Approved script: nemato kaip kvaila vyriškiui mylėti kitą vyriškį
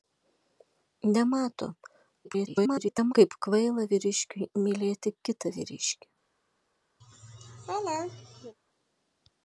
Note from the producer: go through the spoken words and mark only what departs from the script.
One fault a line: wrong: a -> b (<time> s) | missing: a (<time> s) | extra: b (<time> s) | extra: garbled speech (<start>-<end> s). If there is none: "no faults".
extra: garbled speech (2.2-3.1 s)